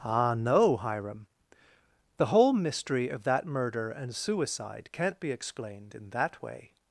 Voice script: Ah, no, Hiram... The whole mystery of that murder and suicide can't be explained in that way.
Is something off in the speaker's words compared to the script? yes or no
no